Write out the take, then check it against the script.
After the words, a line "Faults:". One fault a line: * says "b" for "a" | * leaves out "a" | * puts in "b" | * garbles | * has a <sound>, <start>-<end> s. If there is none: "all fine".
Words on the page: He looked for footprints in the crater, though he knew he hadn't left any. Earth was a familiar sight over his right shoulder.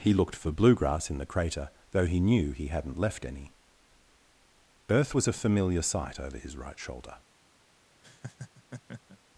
He looked for bluegrass in the crater, though he knew he hadn't left any. Earth was a familiar sight over his right shoulder.
Faults:
* says "bluegrass" for "footprints"
* has a laugh, 8.0-9.2 s